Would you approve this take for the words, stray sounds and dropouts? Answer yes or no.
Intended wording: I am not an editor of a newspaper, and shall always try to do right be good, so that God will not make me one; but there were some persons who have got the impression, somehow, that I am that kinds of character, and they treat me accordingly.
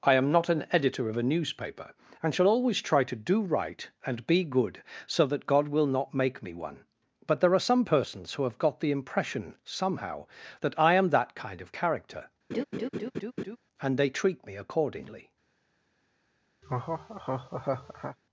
no